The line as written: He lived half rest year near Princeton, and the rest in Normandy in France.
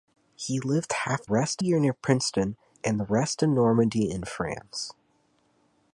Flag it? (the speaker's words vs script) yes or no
no